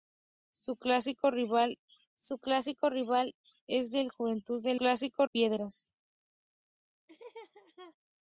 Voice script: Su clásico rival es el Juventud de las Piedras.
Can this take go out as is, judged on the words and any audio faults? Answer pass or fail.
fail